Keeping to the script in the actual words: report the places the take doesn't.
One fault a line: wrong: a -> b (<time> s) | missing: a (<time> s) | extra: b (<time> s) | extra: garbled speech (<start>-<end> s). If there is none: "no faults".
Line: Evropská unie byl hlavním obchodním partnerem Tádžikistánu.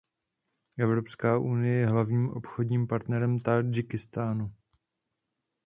wrong: byl -> je (1.8 s)